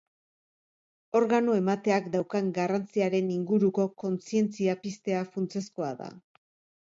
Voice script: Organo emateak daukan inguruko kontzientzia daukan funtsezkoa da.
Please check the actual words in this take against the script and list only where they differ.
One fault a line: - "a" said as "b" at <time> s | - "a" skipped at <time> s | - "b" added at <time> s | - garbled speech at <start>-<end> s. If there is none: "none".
- "garrantziaren" added at 2.5 s
- "daukan" said as "piztea" at 4.9 s